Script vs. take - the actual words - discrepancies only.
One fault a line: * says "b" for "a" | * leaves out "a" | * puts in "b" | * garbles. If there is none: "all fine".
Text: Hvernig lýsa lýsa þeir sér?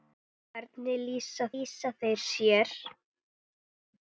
all fine